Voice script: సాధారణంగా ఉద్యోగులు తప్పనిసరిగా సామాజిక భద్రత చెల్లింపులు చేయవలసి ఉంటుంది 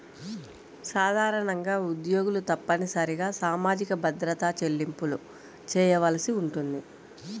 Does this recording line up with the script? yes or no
yes